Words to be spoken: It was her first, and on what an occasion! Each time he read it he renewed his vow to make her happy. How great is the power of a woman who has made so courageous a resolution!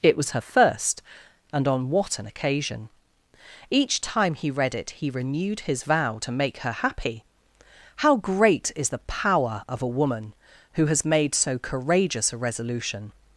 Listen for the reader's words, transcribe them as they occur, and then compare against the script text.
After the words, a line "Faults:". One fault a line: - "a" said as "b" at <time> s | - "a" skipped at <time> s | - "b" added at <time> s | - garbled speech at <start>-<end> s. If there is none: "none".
It was her first, and on what an occasion! Each time he read it he renewed his vow to make her happy. How great is the power of a woman who has made so courageous a resolution!
Faults:
none